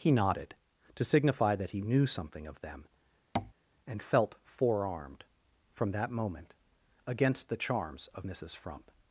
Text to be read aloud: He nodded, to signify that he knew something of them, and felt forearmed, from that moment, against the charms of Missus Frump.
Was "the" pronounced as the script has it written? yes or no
yes